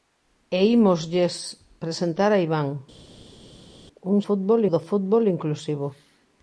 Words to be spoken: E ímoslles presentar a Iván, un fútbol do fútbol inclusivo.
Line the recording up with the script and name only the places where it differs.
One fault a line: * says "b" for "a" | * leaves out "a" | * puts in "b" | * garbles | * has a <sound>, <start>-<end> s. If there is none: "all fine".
all fine